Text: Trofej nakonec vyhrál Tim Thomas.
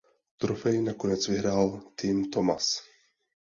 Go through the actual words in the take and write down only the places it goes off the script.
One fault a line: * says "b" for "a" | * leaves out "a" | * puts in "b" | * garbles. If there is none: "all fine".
all fine